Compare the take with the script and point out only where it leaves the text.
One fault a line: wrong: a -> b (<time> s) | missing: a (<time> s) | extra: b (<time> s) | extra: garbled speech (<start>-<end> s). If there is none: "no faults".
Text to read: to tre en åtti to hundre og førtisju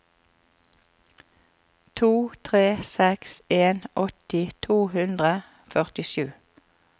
extra: seks (2.9 s)